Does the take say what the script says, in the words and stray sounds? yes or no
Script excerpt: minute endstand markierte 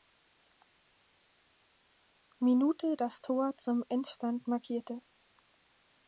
no